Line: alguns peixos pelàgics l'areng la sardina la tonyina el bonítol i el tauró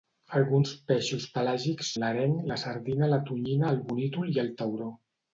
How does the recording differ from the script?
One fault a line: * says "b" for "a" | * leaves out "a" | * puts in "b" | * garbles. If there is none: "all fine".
all fine